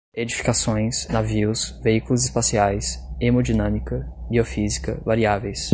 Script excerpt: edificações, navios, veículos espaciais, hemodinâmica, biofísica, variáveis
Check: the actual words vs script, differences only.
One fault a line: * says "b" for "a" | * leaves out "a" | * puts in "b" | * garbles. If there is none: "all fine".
all fine